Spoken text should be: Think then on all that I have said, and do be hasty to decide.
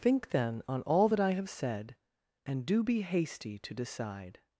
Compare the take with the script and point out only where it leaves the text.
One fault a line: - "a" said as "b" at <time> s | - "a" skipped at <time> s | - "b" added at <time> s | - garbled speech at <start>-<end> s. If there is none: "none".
none